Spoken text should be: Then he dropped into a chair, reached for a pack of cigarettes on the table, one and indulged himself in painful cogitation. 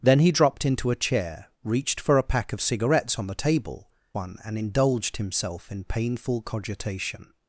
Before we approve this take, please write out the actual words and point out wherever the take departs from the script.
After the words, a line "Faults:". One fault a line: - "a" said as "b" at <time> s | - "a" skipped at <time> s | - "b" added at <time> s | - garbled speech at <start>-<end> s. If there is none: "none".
Then he dropped into a chair, reached for a pack of cigarettes on the table, one and indulged himself in painful cogitation.
Faults:
none